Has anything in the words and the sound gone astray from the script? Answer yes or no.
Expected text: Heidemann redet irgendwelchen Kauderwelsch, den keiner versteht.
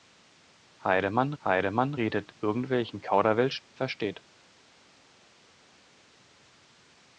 yes